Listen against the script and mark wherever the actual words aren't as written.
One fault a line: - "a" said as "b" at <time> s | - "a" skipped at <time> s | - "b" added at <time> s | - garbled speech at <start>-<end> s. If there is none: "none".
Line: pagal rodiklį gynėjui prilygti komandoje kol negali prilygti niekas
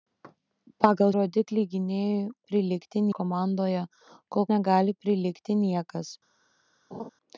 none